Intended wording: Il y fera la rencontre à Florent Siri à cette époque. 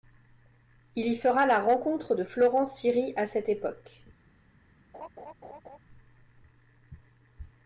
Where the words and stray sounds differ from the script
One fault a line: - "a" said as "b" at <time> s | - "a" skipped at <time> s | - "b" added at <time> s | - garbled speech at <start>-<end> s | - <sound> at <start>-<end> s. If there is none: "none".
- "à" said as "de" at 2.1 s
- laugh at 4.9-5.8 s